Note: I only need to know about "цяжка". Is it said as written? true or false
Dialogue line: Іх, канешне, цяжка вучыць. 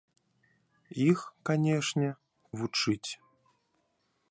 false